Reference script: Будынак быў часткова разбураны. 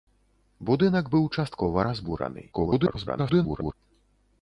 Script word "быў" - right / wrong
right